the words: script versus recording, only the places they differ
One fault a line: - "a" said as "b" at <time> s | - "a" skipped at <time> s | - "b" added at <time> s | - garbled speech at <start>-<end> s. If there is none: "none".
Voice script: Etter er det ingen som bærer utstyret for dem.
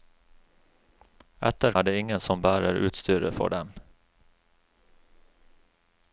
none